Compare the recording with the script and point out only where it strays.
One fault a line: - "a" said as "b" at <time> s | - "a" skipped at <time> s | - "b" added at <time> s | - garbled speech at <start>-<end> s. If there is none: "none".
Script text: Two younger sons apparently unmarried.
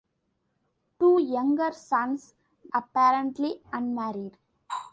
none